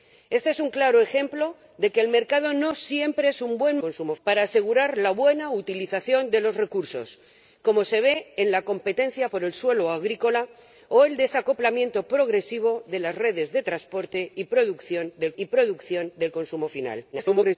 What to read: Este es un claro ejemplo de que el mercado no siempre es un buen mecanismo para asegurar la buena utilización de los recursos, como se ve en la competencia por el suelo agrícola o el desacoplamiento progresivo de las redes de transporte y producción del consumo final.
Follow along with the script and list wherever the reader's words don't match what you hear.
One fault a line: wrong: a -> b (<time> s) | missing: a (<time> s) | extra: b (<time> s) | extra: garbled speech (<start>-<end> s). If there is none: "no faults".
wrong: mecanismo -> consumo (3.8 s)
extra: y producción del (15.4 s)
extra: garbled speech (17.1-17.6 s)